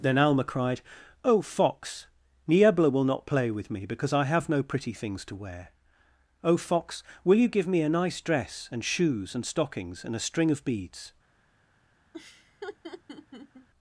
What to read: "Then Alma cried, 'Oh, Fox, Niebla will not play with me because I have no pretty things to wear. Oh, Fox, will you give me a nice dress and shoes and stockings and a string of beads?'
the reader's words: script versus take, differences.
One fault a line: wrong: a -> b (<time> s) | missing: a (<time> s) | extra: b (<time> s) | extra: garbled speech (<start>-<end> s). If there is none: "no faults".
no faults